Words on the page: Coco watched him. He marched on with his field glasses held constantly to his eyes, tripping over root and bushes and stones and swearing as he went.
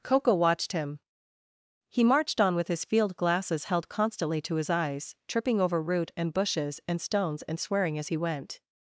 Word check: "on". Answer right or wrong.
right